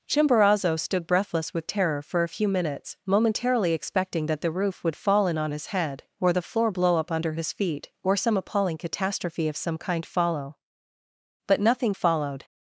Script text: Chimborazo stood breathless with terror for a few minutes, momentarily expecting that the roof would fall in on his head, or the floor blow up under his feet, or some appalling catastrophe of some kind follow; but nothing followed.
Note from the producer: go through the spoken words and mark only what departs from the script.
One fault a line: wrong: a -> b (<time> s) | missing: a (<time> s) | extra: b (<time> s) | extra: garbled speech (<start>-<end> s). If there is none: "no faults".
no faults